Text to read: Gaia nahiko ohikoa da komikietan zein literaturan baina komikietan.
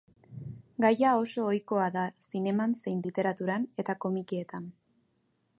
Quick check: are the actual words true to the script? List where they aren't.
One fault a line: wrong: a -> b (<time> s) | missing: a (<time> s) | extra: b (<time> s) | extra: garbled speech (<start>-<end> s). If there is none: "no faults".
wrong: nahiko -> oso (1.2 s)
wrong: komikietan -> zineman (2.3 s)
wrong: baina -> eta (3.8 s)